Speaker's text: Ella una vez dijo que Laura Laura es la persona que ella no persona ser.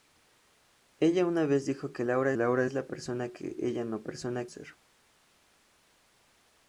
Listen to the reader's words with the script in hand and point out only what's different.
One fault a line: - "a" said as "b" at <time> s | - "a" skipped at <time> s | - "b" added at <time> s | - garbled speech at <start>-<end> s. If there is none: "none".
none